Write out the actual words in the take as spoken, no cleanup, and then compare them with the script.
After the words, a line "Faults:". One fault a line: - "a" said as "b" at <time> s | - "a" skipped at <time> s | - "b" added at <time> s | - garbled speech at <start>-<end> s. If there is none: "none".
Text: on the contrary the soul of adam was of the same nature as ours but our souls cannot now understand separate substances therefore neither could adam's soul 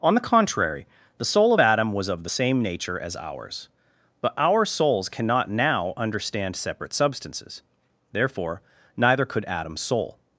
on the contrary the soul of adam was of the same nature as ours but our souls cannot now understand separate substances therefore neither could adam's soul
Faults:
none